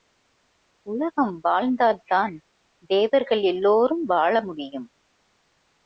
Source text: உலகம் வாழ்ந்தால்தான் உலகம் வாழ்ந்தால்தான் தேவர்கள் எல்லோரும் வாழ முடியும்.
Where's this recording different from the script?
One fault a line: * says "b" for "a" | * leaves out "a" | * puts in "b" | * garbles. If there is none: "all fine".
* leaves out "உலகம் வாழ்ந்தால்தான்"